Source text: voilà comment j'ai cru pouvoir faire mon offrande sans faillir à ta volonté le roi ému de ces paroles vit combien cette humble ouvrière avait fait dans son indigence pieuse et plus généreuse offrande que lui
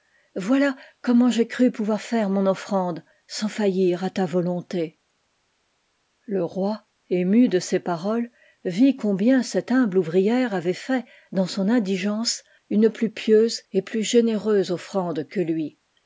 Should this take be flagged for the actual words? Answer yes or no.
yes